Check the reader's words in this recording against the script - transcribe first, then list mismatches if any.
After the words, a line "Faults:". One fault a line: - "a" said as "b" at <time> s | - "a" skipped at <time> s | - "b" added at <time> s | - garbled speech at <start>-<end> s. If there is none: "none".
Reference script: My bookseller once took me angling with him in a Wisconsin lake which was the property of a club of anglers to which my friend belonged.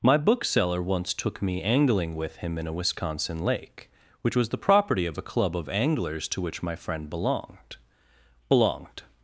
My bookseller once took me angling with him in a Wisconsin lake which was the property of a club of anglers to which my friend belonged belonged.
Faults:
- "belonged" added at 8.5 s